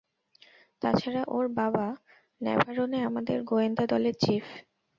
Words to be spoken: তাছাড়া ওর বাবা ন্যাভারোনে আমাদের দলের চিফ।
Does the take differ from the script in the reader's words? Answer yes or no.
yes